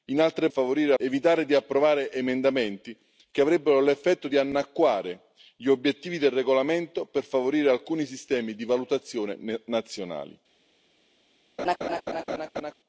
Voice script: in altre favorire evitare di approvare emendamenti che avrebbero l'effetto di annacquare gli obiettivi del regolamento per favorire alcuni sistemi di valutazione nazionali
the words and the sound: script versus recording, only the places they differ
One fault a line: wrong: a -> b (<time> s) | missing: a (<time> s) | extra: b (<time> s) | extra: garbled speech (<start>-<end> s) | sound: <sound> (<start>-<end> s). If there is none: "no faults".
sound: laugh (11.6-12.7 s)